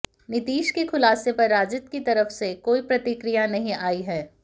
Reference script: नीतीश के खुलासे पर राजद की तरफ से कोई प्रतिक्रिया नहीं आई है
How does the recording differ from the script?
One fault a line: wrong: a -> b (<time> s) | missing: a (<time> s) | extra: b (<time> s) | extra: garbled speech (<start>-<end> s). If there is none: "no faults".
no faults